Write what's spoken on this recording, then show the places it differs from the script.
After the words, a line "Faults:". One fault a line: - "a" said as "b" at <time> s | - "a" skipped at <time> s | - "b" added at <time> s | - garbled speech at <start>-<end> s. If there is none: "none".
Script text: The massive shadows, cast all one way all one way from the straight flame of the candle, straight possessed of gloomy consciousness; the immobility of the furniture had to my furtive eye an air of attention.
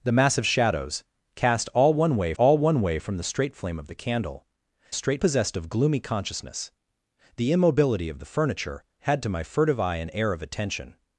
The massive shadows, cast all one way all one way from the straight flame of the candle, straight possessed of gloomy consciousness; the immobility of the furniture had to my furtive eye an air of attention.
Faults:
none